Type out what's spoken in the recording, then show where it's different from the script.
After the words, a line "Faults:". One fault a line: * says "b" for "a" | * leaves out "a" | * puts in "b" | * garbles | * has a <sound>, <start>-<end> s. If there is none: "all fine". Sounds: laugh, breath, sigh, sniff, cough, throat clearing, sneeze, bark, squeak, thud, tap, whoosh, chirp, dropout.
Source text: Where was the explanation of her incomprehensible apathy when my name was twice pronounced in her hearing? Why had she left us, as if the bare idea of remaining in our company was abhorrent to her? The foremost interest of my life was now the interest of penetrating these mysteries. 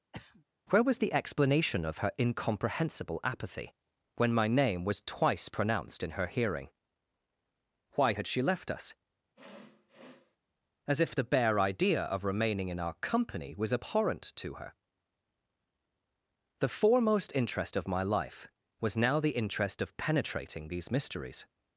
Where was the explanation of her incomprehensible apathy when my name was twice pronounced in her hearing? Why had she left us, as if the bare idea of remaining in our company was abhorrent to her? The foremost interest of my life was now the interest of penetrating these mysteries.
Faults:
* has a throat clearing, 0.1-0.4 s
* has a sniff, 9.4-10.4 s